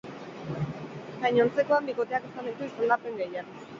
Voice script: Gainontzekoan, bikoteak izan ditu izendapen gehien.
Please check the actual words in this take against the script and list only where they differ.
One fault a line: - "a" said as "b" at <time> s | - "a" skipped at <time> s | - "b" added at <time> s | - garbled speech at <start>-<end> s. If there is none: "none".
none